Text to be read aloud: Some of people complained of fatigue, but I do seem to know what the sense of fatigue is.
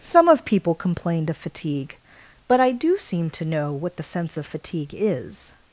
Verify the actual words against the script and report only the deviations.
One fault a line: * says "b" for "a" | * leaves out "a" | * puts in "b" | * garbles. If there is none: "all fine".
all fine